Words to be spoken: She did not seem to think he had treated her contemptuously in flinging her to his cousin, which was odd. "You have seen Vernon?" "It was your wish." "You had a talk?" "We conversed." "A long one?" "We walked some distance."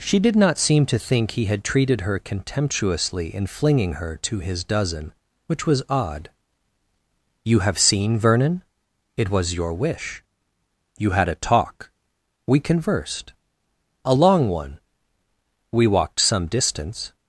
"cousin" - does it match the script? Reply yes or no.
no